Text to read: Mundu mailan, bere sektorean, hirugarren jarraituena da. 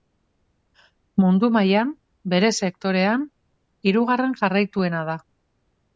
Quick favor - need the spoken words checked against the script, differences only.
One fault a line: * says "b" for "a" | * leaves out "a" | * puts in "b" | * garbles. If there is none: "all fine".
all fine